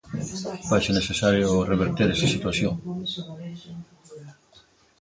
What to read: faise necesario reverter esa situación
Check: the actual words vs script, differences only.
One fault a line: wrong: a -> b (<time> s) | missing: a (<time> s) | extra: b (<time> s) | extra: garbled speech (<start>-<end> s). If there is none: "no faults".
no faults